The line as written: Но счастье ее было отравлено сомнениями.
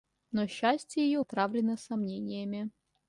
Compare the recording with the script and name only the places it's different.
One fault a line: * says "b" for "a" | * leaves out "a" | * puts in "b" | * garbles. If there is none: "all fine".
* leaves out "было"